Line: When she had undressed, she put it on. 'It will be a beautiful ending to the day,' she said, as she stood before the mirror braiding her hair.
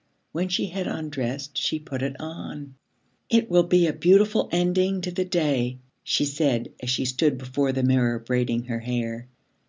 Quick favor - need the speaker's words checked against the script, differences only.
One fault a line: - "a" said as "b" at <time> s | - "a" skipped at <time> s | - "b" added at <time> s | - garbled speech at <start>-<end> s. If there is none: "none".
none